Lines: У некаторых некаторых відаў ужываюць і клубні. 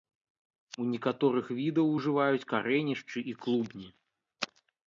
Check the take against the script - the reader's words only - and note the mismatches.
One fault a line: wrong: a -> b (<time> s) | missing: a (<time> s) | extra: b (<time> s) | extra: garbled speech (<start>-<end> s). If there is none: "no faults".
missing: некаторых (1.5 s)
extra: карэнішчы (2.6 s)